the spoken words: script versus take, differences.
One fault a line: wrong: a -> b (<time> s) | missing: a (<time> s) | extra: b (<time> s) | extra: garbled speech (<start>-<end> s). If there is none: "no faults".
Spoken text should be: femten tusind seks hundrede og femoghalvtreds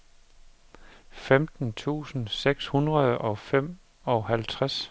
no faults